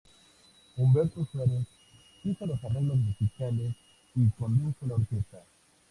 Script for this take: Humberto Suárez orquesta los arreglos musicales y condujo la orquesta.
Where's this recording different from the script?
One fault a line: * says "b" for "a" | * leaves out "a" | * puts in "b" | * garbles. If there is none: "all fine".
* says "hizo" for "orquesta"